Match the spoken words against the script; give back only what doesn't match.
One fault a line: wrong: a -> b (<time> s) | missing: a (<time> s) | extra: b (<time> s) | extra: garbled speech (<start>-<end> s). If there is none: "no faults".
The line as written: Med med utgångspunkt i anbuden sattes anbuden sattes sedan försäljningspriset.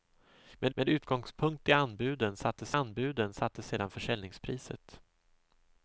no faults